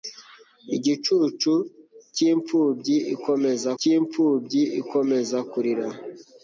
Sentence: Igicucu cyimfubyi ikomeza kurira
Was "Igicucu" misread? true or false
false